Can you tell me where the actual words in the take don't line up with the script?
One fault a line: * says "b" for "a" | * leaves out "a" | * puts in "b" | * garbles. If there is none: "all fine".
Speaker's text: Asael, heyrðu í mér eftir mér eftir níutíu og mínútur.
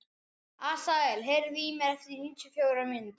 * leaves out "mér eftir"
* puts in "fjórar"